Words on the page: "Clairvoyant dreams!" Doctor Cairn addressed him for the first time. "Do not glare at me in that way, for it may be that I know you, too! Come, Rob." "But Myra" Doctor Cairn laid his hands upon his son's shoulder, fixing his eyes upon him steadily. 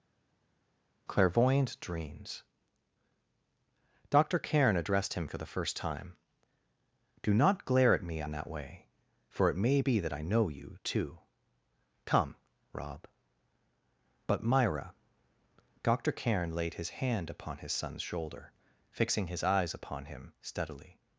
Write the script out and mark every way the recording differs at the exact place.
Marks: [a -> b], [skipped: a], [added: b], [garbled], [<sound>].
"Clairvoyant dreams!" Doctor Cairn addressed him for the first time. "Do not glare at me in that way, for it may be that I know you, too! Come, Rob." "But Myra" Doctor Cairn laid his [hands -> hand] upon his son's shoulder, fixing his eyes upon him steadily.